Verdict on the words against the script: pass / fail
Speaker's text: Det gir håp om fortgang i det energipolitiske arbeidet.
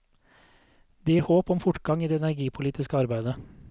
pass